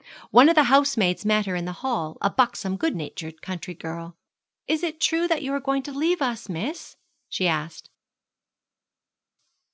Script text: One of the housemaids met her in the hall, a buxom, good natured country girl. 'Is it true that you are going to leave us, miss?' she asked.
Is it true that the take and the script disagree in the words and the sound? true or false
false